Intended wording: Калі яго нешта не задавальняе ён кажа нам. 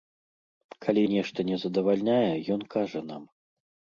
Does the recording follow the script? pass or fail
fail